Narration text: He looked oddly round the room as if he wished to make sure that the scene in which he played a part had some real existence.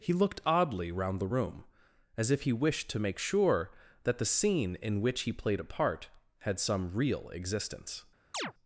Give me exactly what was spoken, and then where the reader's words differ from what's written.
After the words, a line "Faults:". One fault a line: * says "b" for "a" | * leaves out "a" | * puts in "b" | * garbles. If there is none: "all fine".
He looked oddly round the room as if he wished to make sure that the scene in which he played a part had some real existence.
Faults:
all fine